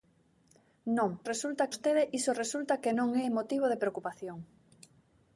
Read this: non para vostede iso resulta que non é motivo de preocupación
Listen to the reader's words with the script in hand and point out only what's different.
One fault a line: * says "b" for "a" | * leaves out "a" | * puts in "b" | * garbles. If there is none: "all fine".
* says "resulta" for "para"